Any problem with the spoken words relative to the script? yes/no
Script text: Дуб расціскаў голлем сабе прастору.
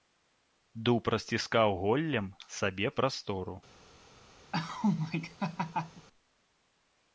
no